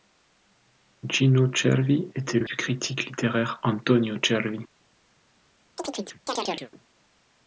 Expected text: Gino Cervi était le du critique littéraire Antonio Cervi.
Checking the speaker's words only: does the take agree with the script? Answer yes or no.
yes